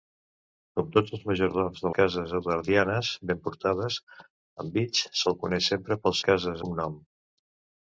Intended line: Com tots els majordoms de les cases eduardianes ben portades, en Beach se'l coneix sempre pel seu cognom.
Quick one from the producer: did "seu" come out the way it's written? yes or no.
no